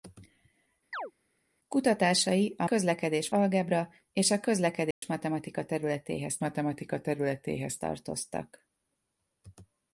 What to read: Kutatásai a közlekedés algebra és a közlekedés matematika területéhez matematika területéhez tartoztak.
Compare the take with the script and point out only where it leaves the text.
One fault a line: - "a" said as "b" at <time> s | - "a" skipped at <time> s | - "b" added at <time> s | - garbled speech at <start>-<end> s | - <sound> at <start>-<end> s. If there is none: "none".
- chirp at 0.9-1.1 s
- dropout at 4.9-5.0 s